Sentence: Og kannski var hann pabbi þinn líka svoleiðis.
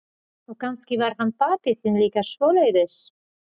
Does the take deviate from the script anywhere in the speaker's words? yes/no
no